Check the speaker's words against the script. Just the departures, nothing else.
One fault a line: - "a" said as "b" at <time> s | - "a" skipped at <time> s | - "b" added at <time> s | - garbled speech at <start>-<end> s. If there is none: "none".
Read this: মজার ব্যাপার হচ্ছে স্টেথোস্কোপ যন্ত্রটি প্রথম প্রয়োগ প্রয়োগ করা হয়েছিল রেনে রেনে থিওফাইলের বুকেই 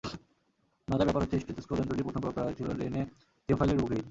- "প্রয়োগ" skipped at 2.3 s
- "রেনে" skipped at 3.0 s